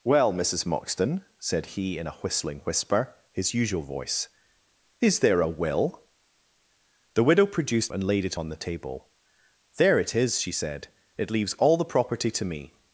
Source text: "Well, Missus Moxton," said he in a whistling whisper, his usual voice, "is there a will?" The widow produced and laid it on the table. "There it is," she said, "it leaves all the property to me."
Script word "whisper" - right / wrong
right